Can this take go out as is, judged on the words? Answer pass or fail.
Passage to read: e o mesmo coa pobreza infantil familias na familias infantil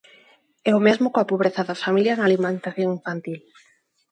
fail